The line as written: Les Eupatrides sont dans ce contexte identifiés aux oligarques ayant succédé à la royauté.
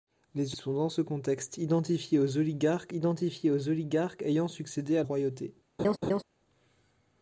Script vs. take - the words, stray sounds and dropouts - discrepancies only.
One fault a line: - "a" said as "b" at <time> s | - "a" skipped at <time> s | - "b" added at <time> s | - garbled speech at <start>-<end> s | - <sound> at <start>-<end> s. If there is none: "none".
- "Eupatrides" skipped at 0.6 s
- "identifiés aux oligarques" added at 2.9 s
- "la" skipped at 5.0 s
- laugh at 5.8-6.2 s